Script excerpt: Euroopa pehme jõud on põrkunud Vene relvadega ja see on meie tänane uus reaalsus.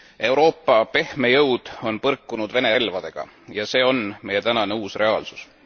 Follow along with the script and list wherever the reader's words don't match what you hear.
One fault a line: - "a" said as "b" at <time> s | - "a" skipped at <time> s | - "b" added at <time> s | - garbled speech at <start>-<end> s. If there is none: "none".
none